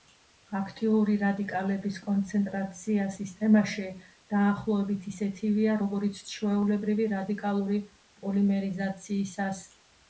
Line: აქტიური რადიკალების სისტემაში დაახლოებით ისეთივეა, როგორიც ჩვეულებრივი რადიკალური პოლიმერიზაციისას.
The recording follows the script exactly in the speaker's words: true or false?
false